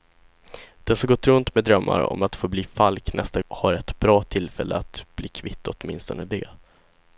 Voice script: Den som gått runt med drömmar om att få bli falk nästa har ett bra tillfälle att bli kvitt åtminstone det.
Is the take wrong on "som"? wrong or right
right